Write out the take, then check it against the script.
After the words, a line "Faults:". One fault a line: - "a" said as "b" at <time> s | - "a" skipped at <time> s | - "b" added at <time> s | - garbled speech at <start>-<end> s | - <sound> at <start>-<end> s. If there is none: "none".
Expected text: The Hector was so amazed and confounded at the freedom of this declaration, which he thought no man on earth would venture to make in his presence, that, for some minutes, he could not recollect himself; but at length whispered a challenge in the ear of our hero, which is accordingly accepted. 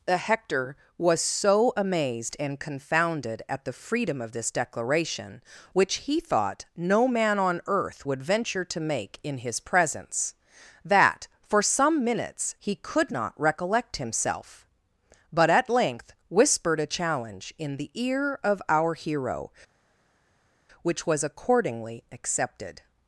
The Hector was so amazed and confounded at the freedom of this declaration, which he thought no man on earth would venture to make in his presence, that, for some minutes, he could not recollect himself; but at length whispered a challenge in the ear of our hero, which was accordingly accepted.
Faults:
- "is" said as "was" at 21.1 s